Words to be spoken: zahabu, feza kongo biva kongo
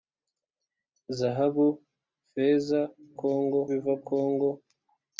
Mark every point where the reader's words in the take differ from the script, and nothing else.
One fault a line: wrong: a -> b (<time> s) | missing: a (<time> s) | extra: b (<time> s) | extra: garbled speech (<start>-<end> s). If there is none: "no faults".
no faults